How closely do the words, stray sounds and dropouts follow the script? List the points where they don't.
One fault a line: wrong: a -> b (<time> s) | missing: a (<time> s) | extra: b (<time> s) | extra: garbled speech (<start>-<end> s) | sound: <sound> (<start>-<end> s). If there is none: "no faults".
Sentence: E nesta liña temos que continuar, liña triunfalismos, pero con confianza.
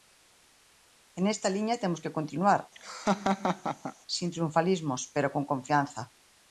sound: laugh (2.7-3.9 s)
wrong: liña -> sen (4.2 s)